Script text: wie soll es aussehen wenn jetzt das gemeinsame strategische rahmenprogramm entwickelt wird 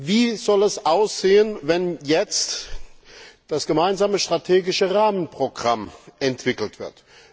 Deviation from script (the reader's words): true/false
false